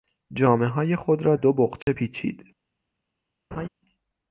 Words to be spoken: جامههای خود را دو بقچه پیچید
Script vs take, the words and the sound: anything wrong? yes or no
yes